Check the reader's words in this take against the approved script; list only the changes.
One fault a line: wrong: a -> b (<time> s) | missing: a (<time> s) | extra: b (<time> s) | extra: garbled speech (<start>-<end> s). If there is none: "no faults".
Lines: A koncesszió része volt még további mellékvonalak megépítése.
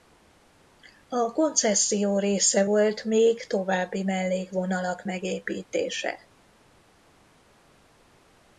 no faults